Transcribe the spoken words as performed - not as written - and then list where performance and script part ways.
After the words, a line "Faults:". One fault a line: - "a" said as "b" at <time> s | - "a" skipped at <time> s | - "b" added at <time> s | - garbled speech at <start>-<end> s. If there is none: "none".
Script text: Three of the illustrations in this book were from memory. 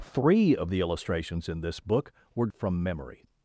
Three of the illustrations in this book were from memory.
Faults:
none